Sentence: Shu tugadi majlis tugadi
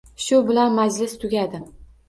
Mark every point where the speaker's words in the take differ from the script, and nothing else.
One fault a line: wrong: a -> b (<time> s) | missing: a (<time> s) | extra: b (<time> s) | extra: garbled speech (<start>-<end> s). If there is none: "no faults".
wrong: tugadi -> bilan (0.5 s)